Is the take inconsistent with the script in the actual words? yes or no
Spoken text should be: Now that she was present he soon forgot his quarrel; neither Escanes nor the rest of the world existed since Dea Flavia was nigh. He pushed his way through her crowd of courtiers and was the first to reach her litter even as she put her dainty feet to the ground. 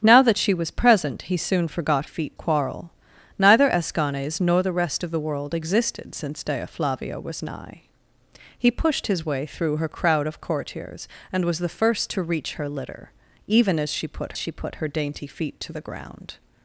yes